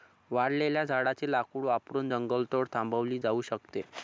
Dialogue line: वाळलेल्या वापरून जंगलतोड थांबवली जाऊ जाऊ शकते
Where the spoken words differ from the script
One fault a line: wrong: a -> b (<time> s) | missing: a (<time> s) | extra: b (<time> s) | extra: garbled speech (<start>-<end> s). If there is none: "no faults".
extra: झाडाचे लाकूड (0.8 s)
missing: जाऊ (3.4 s)